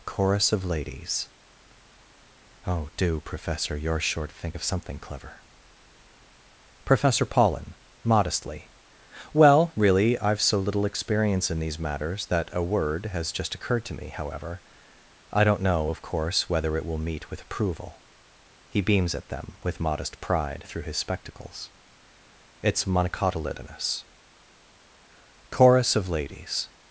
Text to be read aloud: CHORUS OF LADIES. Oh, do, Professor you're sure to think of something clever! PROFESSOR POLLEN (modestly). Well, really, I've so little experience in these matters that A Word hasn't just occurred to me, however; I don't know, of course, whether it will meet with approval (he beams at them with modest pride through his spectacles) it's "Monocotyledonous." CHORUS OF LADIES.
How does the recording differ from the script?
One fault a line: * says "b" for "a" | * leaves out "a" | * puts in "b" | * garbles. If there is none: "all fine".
* says "has" for "hasn't"